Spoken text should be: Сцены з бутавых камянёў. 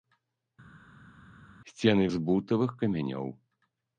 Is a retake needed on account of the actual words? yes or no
no